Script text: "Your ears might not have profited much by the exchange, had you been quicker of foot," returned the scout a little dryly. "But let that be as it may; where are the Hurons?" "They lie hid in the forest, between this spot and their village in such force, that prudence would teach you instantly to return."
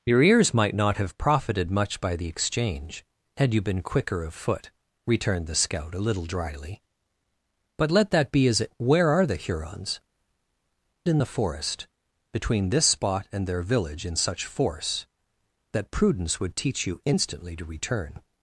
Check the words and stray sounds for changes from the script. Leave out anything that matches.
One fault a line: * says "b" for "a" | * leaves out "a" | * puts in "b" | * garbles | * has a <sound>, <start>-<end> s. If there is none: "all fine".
* leaves out "may"
* leaves out "They lie hid"